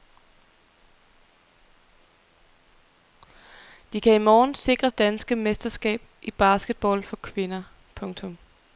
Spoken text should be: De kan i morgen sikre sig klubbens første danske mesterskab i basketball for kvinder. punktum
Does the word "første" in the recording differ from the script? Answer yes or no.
yes